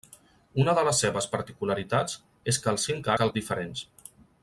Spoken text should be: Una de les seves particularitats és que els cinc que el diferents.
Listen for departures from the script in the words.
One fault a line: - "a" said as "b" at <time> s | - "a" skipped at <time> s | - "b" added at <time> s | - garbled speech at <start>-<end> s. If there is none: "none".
none